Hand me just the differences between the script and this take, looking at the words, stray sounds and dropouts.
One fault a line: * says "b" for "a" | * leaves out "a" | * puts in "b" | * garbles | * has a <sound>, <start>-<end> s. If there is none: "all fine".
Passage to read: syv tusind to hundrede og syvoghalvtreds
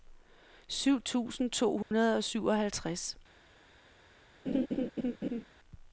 * has a dropout, 1.8-1.9 s
* has a laugh, 4.5-5.4 s